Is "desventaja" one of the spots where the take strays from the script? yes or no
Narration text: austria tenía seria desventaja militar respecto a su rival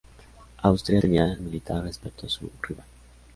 yes